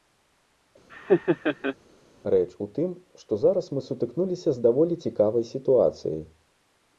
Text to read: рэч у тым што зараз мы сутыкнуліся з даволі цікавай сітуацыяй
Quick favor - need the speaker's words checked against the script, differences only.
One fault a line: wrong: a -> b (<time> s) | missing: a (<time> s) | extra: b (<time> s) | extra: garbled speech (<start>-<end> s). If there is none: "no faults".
no faults